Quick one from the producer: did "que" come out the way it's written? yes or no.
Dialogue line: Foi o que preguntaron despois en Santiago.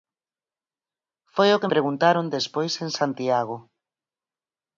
yes